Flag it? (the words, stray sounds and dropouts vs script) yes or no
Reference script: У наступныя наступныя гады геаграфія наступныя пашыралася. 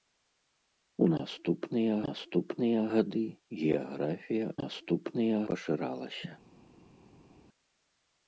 no